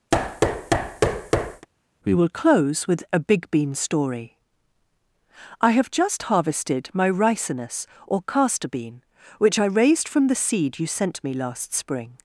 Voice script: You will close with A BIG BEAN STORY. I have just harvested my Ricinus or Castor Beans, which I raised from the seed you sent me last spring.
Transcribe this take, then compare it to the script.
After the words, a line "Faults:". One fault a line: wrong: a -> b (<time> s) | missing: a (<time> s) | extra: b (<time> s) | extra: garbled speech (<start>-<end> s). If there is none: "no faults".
We will close with A BIG BEAN STORY. I have just harvested my Ricinus or Castor Bean, which I raised from the seed you sent me last spring.
Faults:
wrong: You -> We (2.0 s)
wrong: Beans -> Bean (8.7 s)